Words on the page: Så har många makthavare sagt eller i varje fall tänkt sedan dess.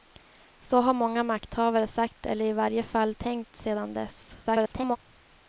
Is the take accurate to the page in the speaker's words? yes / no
no